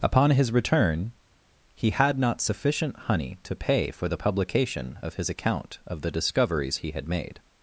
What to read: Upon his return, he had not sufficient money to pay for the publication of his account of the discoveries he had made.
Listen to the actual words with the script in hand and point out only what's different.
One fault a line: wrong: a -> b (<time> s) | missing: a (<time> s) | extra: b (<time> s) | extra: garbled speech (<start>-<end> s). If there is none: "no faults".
wrong: money -> honey (3.0 s)